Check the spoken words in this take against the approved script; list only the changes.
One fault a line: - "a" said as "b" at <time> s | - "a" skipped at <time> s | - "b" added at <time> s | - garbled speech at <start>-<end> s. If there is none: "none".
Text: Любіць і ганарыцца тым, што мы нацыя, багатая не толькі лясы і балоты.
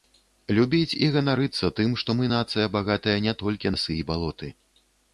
none